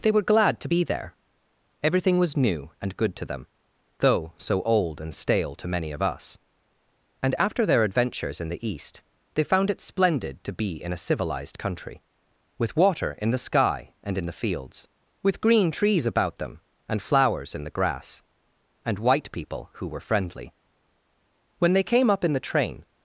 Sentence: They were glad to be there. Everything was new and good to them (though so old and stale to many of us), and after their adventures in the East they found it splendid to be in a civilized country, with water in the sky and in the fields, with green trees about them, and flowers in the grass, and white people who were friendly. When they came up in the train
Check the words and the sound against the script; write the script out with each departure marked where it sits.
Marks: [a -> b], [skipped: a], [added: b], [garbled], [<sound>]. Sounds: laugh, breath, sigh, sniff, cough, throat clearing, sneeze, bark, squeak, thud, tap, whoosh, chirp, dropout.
They were glad to be there. Everything was new and good to them (though so old and stale to many of us), and after their adventures in the East they found it splendid to be in a civilized country, with water in the sky and in the fields, with green trees about them, and flowers in the grass, and white people who were friendly. When they came up in the train